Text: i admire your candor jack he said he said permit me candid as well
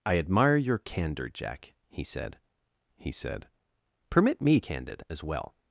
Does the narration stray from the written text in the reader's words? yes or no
no